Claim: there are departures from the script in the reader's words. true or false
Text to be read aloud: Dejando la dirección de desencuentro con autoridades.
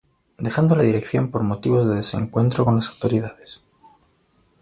true